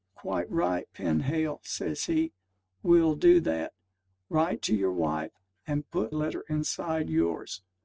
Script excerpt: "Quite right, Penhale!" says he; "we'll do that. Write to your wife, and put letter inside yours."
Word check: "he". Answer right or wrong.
right